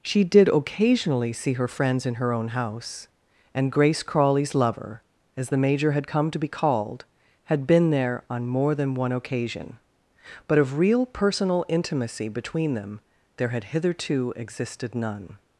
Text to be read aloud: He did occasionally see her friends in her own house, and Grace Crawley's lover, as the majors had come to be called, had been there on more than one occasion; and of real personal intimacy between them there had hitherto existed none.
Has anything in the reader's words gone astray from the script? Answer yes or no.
yes